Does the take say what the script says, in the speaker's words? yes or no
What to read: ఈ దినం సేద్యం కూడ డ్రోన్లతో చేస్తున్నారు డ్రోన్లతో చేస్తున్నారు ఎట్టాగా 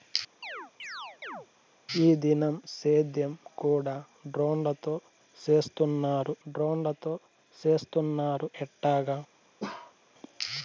yes